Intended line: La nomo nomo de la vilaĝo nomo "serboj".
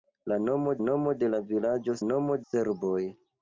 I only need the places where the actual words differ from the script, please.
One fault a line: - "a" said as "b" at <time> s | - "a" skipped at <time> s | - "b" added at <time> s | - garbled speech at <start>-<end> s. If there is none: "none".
none